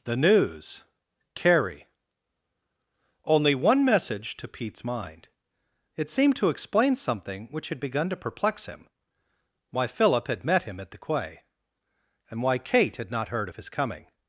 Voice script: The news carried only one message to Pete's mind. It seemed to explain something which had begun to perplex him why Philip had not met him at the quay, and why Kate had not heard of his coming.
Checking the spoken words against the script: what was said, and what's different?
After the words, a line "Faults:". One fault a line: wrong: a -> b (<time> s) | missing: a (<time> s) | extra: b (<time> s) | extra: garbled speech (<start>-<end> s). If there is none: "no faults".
The news carrie only one message to Pete's mind. It seemed to explain something which had begun to perplex him why Philip had met him at the quay, and why Kate had not heard of his coming.
Faults:
wrong: carried -> carrie (1.3 s)
missing: not (10.4 s)